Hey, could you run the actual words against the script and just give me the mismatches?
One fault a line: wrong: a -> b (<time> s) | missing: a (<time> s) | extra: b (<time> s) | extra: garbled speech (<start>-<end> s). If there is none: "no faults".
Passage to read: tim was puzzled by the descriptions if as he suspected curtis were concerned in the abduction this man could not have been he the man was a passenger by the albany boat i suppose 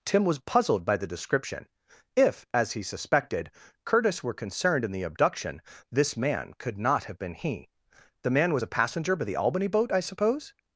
wrong: descriptions -> description (1.1 s)